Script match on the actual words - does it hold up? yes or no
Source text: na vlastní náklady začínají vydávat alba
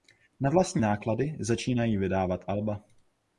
yes